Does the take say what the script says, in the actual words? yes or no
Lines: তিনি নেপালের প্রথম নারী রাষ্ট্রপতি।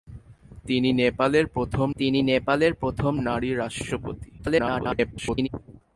no